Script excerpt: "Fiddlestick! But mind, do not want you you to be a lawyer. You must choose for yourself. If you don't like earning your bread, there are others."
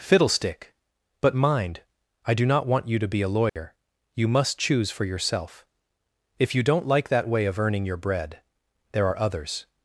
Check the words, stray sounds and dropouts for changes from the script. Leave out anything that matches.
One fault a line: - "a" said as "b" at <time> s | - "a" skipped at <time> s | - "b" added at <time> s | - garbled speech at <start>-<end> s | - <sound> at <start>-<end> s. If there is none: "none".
- "I" added at 2.2 s
- "you" skipped at 3.0 s
- dropout at 3.5-3.6 s
- "that way of" added at 7.1 s